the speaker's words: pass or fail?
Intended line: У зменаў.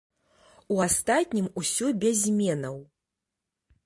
fail